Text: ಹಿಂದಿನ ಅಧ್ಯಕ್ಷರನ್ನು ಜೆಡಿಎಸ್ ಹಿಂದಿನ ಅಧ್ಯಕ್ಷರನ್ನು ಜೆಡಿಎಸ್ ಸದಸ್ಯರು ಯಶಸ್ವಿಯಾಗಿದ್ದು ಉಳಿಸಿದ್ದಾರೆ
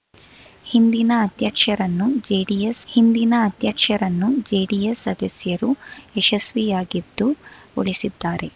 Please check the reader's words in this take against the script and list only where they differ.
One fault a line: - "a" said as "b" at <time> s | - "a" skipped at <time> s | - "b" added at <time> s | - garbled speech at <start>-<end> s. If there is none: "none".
none